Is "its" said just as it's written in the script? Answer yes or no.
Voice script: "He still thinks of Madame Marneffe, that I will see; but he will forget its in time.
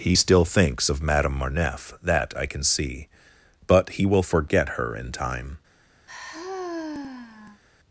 no